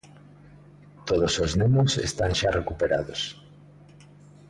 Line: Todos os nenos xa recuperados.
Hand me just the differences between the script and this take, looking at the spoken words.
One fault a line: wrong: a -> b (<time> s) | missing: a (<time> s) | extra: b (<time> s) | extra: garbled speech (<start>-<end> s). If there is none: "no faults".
extra: están (2.1 s)